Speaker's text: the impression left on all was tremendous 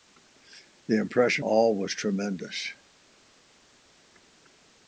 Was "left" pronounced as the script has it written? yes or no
no